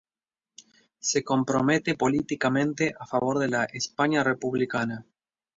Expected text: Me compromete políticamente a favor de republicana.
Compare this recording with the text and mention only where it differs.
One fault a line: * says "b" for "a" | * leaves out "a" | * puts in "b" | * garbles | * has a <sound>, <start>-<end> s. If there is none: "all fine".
* says "Se" for "Me"
* puts in "la España"